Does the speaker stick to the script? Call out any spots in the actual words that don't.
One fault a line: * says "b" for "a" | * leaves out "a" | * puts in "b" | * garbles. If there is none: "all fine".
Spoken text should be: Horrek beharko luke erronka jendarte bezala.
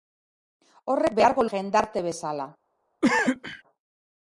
* leaves out "luke erronka"